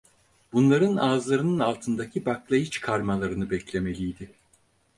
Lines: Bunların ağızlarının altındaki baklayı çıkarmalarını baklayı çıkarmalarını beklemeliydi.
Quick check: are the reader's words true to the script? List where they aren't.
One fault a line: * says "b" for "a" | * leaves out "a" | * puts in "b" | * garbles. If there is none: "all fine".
* leaves out "baklayı çıkarmalarını"